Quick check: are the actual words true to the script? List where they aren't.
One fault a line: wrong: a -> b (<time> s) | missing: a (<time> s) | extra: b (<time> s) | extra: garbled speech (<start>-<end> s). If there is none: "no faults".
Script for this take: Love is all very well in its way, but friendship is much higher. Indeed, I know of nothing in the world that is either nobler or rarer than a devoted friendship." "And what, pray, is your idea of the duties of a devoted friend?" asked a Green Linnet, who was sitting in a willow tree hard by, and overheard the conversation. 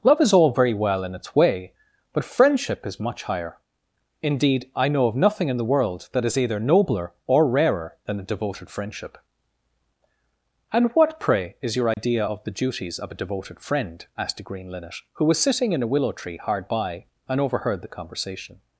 no faults